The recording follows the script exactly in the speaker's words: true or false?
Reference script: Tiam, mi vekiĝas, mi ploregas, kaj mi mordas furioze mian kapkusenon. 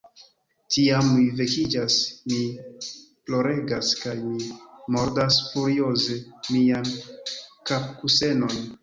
true